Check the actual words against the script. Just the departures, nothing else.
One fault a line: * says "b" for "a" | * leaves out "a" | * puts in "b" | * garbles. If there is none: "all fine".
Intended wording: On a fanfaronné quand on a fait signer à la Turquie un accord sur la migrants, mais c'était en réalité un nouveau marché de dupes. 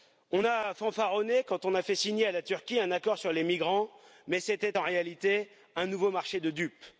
* says "les" for "la"